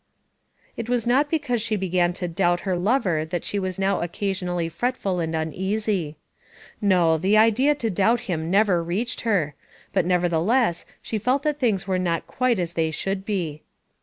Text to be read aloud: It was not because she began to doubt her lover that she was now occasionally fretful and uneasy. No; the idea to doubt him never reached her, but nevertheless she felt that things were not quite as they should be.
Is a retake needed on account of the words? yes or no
no